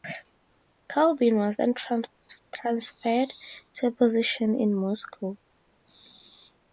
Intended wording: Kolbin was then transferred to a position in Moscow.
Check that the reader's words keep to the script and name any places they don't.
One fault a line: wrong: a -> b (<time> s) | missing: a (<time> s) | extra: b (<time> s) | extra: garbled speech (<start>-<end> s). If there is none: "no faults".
no faults